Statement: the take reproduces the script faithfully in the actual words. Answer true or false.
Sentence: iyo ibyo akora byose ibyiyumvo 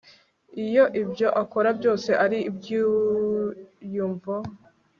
false